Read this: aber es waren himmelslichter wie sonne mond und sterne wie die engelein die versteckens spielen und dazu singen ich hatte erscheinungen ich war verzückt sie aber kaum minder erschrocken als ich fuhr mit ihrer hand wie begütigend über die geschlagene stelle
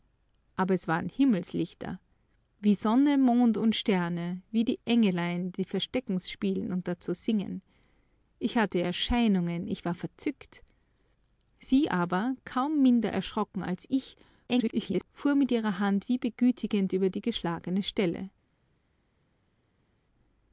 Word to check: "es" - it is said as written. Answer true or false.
true